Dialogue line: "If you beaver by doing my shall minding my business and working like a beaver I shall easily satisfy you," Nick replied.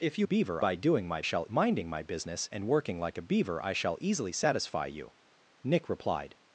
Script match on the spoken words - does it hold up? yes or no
yes